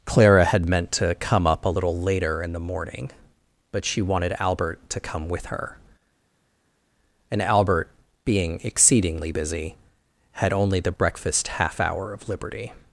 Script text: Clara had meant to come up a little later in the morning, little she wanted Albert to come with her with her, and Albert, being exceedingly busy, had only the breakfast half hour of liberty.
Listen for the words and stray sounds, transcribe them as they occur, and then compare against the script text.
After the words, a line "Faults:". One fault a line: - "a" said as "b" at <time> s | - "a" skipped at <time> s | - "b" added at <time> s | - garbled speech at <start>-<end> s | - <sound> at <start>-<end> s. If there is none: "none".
Clara had meant to come up a little later in the morning, but she wanted Albert to come with her, and Albert, being exceedingly busy, had only the breakfast half hour of liberty.
Faults:
- "little" said as "but" at 3.7 s
- "with her" skipped at 5.8 s